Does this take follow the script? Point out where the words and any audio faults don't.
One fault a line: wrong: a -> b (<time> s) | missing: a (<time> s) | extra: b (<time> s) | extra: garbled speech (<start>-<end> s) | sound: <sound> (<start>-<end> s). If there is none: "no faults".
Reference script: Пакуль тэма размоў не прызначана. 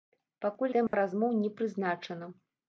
sound: dropout (0.9-0.9 s)